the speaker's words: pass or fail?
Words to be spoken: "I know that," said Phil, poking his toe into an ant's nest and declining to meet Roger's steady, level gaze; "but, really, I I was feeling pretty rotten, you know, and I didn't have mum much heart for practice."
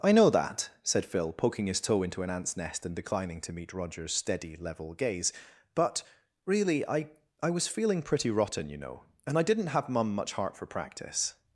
pass